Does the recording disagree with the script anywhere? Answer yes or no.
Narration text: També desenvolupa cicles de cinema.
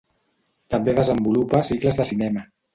no